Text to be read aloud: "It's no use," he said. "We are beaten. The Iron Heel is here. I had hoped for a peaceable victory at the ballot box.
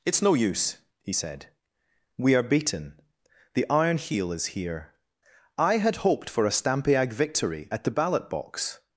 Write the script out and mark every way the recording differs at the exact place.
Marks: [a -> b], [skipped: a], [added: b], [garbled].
"It's no use," he said. "We are beaten. The Iron Heel is here. I had hoped for a [peaceable -> stampiag] victory at the ballot box.